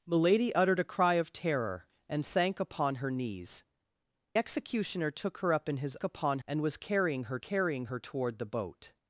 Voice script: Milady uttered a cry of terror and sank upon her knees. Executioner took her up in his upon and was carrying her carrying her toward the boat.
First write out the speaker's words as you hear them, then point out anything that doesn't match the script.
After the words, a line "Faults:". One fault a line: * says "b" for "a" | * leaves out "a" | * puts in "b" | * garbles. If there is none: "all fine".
Milady uttered a cry of terror and sank upon her knees. Executioner took her up in his upon and was carrying her carrying her toward the boat.
Faults:
all fine